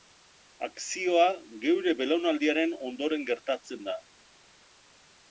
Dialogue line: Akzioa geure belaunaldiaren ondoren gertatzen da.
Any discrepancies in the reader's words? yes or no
no